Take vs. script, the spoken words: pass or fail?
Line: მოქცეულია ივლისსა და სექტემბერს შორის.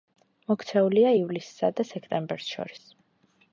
pass